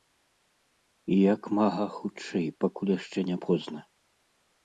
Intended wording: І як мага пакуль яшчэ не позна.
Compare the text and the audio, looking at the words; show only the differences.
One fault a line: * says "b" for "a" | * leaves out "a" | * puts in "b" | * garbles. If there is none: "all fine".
* puts in "хутчэй"